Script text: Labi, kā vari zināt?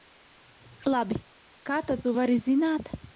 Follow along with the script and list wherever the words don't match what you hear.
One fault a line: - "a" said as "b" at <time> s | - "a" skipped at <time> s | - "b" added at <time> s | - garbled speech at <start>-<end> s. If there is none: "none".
- "tad tu" added at 1.9 s